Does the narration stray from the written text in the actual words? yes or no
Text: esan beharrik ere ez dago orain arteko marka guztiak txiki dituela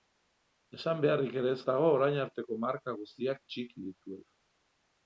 no